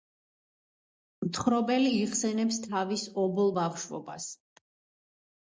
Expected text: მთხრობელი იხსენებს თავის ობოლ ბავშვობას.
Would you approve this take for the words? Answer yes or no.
yes